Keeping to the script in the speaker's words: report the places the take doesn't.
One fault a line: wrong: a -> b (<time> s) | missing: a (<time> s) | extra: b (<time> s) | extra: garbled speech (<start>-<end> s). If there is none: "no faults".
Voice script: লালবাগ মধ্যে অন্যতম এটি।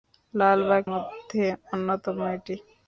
no faults